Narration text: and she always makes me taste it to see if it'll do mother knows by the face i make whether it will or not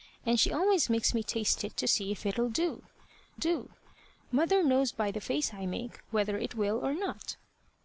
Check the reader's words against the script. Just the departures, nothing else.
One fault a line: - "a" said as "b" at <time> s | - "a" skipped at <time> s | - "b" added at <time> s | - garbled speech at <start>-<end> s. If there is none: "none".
- "do" added at 3.3 s